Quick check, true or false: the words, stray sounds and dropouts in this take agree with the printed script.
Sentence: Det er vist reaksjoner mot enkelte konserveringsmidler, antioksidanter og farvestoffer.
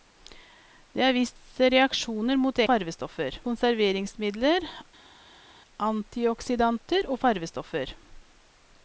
false